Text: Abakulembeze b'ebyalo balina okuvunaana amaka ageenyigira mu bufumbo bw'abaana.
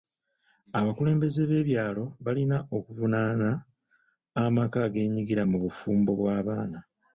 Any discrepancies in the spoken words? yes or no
no